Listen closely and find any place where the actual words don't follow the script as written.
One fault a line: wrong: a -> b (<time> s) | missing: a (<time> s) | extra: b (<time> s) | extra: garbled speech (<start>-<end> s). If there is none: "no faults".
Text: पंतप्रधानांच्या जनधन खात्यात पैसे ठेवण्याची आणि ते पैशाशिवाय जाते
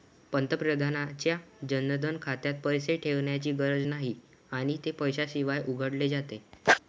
extra: गरज नाही (3.5 s)
extra: उघडले (5.7 s)